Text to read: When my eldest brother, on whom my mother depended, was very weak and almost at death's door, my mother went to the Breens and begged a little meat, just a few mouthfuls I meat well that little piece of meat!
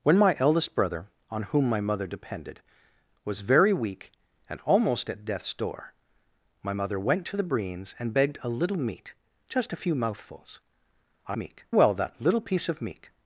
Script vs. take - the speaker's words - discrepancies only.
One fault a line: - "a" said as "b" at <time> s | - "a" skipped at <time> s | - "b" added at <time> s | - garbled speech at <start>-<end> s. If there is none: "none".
none